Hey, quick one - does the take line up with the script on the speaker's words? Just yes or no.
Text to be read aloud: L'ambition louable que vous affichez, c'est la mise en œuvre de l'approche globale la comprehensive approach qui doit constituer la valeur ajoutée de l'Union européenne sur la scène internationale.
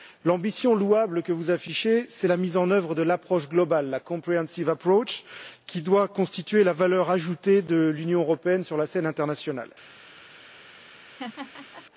yes